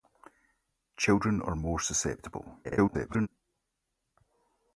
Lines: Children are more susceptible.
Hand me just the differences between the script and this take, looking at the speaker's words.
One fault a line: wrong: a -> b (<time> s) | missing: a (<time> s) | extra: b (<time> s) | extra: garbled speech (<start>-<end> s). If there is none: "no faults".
extra: garbled speech (2.6-3.3 s)